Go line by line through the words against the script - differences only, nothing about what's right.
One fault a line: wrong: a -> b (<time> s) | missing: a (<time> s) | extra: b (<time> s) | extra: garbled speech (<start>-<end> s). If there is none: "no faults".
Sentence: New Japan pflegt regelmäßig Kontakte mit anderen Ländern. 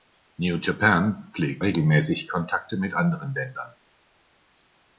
no faults